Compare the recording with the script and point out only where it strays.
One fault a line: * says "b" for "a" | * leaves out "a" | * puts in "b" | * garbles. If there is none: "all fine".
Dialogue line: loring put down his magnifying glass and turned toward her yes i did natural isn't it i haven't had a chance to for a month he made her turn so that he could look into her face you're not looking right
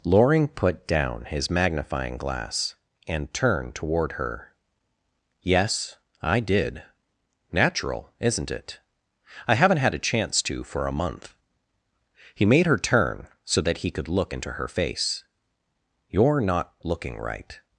all fine